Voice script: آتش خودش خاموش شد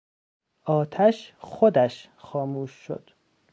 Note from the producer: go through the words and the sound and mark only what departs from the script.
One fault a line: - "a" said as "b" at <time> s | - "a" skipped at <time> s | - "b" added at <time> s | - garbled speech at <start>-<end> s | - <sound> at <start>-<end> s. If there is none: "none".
none